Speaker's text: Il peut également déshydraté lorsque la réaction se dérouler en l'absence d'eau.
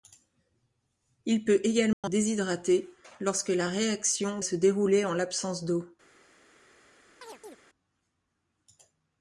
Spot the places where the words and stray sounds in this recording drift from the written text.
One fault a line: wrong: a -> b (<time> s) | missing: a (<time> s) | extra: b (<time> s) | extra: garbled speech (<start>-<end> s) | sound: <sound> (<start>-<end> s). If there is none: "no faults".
sound: dropout (1.9-2.0 s)
sound: chirp (7.2-7.6 s)